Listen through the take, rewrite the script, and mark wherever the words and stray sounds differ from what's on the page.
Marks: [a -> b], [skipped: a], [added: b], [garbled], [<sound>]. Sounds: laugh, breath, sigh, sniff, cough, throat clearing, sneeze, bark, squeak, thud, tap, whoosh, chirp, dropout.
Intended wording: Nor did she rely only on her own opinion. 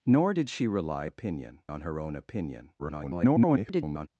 Nor did she rely [only -> opinion] on her own opinion. [garbled]